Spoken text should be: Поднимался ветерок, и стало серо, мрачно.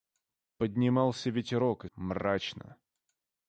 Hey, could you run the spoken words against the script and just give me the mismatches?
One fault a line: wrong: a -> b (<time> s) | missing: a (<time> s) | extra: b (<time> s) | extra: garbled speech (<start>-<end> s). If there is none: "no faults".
missing: стало серо (1.9 s)